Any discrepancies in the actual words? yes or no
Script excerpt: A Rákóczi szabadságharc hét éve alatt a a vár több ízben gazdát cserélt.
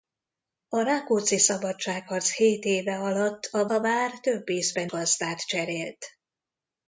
no